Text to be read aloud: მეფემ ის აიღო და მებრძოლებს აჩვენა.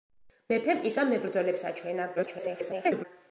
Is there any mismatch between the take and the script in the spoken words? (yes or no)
yes